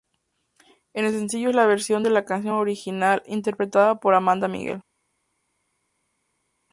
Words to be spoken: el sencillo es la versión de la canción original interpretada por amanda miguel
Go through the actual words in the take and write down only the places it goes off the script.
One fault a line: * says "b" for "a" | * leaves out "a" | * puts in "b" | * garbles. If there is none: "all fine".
all fine